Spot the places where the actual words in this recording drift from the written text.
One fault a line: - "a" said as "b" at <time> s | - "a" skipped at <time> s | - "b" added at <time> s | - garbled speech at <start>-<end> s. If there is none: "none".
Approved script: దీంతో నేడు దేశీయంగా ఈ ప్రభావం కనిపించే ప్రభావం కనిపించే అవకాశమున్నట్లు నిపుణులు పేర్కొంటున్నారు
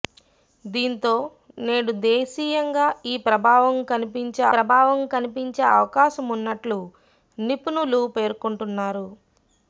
none